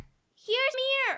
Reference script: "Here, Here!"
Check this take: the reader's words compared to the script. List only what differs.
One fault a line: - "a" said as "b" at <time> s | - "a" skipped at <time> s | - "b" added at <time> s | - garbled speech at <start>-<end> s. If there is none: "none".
none